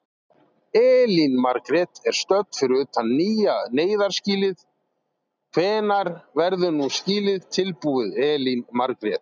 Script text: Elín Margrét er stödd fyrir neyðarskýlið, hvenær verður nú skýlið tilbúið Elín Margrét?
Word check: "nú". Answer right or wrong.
right